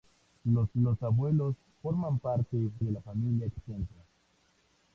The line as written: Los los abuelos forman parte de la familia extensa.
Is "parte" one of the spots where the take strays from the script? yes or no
no